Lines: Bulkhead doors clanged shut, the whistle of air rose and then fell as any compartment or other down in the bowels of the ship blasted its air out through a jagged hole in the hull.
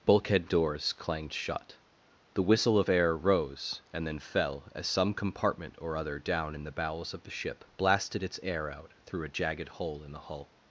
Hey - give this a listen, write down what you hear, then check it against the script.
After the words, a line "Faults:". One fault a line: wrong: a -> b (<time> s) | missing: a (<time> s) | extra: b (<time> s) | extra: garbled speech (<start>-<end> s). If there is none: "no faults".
Bulkhead doors clanged shut, the whistle of air rose and then fell as some compartment or other down in the bowels of the ship blasted its air out through a jagged hole in the hull.
Faults:
wrong: any -> some (4.9 s)